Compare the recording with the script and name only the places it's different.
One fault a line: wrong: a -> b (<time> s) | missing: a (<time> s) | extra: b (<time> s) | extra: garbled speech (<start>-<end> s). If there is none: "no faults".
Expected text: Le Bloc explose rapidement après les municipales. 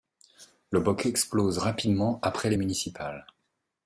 no faults